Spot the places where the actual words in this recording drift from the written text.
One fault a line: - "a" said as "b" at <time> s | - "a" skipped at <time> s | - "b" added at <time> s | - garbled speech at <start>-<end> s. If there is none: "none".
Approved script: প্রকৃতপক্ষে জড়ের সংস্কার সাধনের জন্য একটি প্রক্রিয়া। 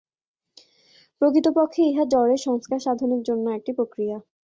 - "ইহা" added at 1.9 s